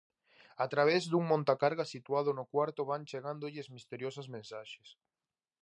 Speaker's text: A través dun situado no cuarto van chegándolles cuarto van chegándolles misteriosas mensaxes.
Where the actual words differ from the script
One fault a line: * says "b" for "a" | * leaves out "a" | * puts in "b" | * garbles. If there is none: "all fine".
* puts in "montacargas"
* leaves out "cuarto van chegándolles"